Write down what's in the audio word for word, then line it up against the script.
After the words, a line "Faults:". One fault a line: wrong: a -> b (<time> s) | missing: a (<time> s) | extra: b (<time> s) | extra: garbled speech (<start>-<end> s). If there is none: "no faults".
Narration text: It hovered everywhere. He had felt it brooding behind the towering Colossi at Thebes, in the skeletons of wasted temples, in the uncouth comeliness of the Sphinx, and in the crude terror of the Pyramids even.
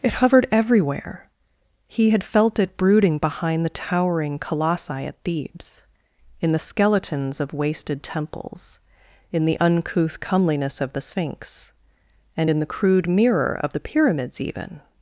It hovered everywhere. He had felt it brooding behind the towering Colossi at Thebes, in the skeletons of wasted temples, in the uncouth comeliness of the Sphinx, and in the crude mirror of the Pyramids even.
Faults:
wrong: terror -> mirror (13.1 s)